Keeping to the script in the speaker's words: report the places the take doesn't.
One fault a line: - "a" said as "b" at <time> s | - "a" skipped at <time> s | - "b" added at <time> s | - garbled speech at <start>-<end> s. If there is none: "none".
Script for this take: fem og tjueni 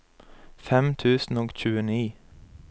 - "tusen" added at 0.9 s